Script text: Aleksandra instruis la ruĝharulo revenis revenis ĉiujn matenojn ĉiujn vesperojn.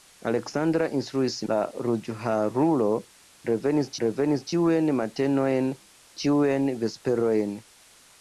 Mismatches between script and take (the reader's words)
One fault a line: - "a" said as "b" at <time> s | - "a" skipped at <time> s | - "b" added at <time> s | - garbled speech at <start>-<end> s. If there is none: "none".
none